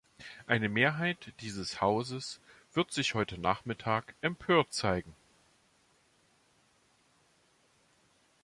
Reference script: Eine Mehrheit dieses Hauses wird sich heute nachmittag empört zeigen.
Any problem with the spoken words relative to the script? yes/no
no